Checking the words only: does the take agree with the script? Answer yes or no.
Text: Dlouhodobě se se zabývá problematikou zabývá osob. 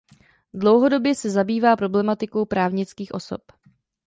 no